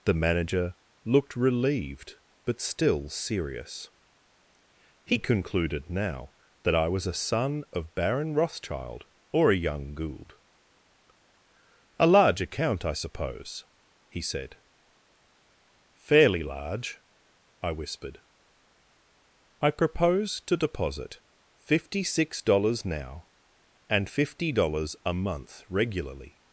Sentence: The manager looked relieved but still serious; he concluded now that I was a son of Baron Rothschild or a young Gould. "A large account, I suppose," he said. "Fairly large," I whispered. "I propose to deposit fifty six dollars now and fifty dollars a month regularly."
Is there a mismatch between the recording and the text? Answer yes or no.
no